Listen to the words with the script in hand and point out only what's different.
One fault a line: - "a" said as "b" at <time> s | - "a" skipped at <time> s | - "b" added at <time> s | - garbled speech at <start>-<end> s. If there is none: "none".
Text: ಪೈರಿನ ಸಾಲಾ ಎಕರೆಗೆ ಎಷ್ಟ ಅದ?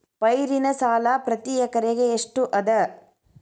- "ಪ್ರತಿ" added at 1.2 s